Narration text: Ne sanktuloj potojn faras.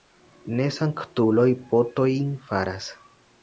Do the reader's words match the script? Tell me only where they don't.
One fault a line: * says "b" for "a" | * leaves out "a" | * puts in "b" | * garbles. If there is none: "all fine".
all fine